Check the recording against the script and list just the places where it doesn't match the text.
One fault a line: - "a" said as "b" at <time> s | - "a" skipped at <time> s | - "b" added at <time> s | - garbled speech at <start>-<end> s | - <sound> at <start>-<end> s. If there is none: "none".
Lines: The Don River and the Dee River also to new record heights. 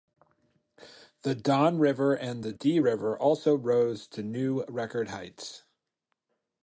- "rose" added at 3.5 s